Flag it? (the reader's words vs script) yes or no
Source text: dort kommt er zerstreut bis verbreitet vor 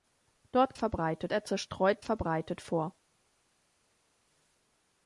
yes